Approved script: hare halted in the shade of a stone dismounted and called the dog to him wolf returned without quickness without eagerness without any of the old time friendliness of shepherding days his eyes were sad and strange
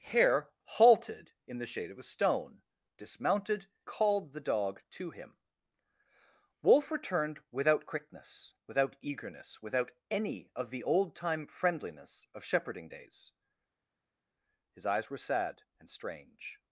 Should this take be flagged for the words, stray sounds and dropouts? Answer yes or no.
yes